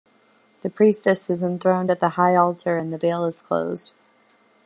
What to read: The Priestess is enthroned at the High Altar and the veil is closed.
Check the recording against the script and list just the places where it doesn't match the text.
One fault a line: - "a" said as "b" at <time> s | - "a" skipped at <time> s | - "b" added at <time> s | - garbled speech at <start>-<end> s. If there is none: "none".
none